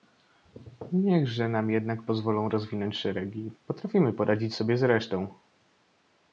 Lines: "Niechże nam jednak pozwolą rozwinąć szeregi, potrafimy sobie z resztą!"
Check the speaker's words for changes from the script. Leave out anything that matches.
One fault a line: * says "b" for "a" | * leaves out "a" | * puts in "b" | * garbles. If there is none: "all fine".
* puts in "poradzić"